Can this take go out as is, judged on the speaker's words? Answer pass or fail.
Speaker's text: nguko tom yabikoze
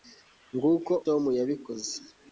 pass